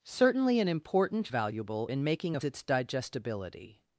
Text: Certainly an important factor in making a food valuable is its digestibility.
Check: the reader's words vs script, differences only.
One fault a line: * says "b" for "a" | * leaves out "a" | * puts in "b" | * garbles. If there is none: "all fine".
* says "valuable" for "factor"
* leaves out "food valuable is"